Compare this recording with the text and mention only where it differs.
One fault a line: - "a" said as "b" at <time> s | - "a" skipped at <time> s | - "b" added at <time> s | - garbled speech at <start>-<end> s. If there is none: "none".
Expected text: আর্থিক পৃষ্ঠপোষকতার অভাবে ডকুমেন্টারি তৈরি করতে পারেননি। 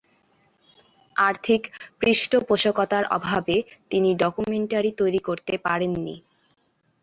- "তিনি" added at 3.9 s